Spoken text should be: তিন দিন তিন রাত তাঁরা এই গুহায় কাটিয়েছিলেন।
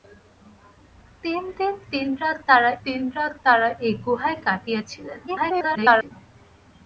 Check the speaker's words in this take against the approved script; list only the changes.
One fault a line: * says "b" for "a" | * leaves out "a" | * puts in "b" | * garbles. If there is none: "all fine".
* puts in "তিন রাত তাঁরা"
* garbles